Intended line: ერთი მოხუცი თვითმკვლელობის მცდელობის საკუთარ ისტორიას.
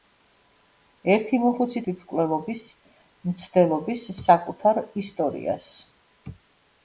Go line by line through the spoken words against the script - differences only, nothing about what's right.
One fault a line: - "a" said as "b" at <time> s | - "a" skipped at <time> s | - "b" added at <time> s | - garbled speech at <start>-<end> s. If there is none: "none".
none